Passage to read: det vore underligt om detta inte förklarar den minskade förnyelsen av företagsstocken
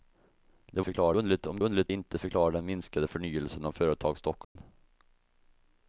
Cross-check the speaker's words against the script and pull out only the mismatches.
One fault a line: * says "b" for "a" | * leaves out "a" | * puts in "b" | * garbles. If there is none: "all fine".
* says "förklarar" for "vore"
* says "underligt" for "detta"